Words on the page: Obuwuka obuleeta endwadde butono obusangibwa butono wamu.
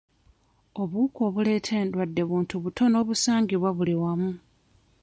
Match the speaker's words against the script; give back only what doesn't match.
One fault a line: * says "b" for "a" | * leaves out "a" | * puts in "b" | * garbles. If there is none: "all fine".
* puts in "buntu"
* says "buli" for "butono"